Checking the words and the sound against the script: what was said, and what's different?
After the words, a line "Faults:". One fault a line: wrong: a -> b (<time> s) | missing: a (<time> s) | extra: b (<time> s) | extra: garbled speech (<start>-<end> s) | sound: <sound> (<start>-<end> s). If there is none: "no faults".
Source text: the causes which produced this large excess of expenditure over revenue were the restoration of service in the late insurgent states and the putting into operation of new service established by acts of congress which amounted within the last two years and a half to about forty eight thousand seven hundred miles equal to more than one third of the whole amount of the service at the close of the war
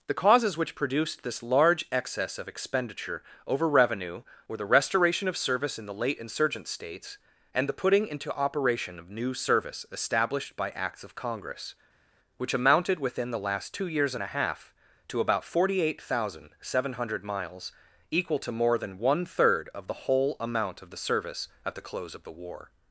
the causes which produced this large excess of expenditure over revenue were the restoration of service in the late insurgent states and the putting into operation of new service established by acts of congress which amounted within the last two years and a half to about forty eight thousand seven hundred miles equal to more than one third of the whole amount of the service at the close of the war
Faults:
no faults